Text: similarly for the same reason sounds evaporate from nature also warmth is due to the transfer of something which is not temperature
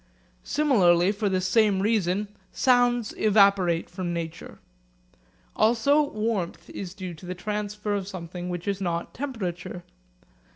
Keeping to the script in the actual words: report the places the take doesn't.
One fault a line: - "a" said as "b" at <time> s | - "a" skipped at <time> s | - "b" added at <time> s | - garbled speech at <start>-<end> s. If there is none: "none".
none